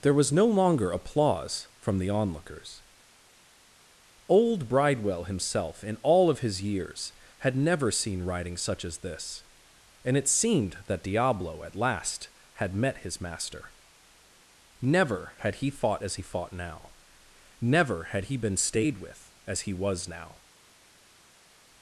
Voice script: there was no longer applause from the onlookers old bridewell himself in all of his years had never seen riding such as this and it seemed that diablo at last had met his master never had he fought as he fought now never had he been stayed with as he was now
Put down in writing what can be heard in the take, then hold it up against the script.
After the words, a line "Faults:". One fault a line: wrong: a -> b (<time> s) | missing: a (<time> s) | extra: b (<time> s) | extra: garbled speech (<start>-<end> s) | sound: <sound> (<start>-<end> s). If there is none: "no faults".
there was no longer applause from the onlookers old bridewell himself in all of his years had never seen riding such as this and it seemed that diablo at last had met his master never had he fought as he fought now never had he been stayed with as he was now
Faults:
no faults